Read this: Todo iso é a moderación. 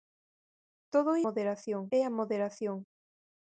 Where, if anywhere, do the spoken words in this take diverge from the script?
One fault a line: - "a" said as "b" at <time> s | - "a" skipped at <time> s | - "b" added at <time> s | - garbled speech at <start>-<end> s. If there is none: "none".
- "iso" said as "moderación" at 1.2 s